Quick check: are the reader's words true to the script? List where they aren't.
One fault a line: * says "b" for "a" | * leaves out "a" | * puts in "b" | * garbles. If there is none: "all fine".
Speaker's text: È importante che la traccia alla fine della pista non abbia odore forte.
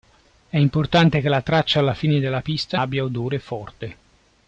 * leaves out "non"